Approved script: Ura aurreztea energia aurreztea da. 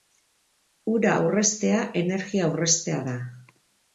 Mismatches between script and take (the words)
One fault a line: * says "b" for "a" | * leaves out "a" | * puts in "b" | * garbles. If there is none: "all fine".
all fine